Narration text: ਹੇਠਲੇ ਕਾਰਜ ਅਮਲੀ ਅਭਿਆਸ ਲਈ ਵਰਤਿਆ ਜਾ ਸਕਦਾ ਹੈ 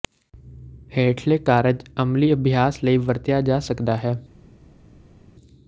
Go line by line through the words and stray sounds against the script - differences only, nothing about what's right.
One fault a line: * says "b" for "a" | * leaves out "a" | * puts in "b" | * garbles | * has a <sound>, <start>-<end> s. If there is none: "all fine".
all fine